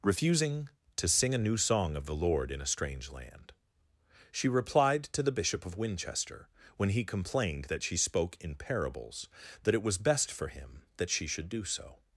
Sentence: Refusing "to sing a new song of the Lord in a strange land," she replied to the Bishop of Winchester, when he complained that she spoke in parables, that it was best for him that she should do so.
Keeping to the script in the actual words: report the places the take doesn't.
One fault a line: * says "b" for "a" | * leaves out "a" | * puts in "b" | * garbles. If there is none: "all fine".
all fine